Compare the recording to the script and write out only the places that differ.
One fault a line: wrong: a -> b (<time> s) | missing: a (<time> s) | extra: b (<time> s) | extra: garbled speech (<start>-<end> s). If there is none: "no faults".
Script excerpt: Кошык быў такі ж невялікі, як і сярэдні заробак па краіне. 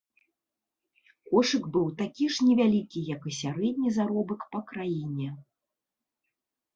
no faults